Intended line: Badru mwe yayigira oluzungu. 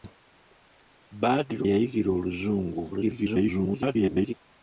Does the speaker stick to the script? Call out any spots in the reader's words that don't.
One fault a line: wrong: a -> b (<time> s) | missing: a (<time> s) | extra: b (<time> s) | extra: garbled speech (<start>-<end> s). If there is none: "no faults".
missing: mwe (1.6 s)
extra: garbled speech (2.9-4.3 s)